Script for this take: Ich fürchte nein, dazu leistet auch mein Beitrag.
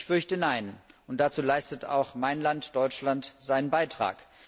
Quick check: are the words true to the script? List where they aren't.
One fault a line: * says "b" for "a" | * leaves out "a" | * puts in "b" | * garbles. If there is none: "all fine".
* puts in "und"
* puts in "Land Deutschland seinen"